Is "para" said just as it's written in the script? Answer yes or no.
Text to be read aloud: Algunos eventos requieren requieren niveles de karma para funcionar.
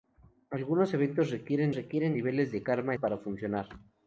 yes